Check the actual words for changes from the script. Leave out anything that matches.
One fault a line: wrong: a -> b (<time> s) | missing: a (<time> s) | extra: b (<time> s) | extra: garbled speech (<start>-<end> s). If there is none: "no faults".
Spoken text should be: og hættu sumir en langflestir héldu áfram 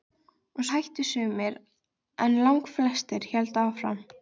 no faults